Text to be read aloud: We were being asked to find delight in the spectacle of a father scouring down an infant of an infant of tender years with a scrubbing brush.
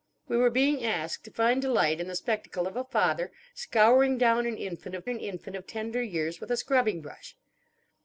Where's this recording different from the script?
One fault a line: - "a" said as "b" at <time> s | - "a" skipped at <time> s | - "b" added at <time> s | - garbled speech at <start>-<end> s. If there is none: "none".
none